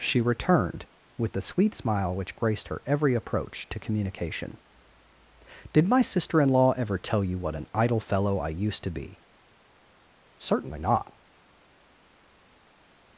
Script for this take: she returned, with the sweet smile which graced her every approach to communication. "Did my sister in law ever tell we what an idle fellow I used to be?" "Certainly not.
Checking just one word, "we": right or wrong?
wrong